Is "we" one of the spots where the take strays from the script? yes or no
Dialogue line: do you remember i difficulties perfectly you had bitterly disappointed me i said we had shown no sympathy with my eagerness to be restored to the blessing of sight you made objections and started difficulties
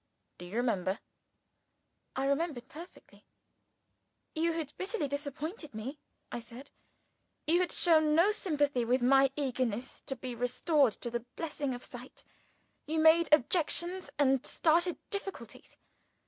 yes